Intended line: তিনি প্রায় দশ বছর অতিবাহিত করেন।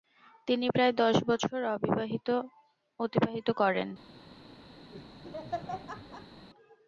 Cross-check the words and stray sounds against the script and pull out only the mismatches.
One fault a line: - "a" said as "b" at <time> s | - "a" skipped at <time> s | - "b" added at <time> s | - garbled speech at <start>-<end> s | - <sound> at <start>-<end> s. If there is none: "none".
- laugh at 4.9-6.5 s